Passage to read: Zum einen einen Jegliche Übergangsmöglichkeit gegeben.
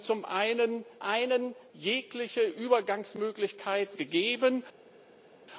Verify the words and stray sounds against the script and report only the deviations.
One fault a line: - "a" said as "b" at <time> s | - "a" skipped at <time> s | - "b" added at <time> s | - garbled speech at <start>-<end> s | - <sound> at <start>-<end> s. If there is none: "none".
none